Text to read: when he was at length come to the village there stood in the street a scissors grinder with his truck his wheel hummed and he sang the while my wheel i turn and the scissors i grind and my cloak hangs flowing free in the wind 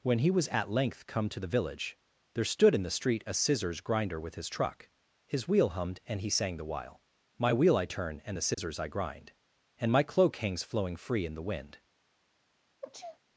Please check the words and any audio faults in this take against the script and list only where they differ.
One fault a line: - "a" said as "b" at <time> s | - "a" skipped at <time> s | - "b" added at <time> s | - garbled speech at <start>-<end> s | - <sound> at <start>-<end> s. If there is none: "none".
- dropout at 8.5-8.6 s
- sneeze at 12.8-13.2 s